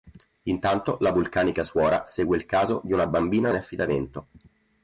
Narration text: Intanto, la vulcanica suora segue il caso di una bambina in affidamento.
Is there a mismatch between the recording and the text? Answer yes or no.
no